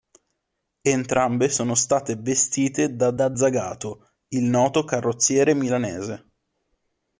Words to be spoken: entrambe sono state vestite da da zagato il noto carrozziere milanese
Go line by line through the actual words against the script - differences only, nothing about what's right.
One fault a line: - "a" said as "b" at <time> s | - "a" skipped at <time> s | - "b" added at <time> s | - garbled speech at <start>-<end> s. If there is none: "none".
none